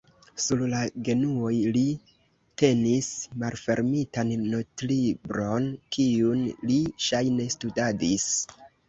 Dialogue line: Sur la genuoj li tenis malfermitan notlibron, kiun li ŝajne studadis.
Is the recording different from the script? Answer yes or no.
no